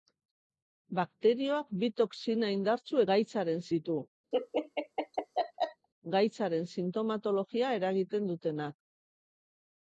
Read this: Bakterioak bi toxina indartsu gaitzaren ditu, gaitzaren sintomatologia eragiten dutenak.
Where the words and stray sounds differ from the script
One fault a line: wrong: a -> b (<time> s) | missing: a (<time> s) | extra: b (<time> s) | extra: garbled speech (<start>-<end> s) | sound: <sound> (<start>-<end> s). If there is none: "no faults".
sound: laugh (4.3-5.9 s)